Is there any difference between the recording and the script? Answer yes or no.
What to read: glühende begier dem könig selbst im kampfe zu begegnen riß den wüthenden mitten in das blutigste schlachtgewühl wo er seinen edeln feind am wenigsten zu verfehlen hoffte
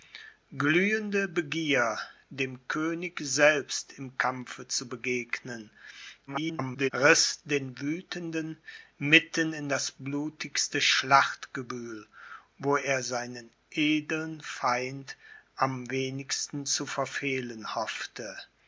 yes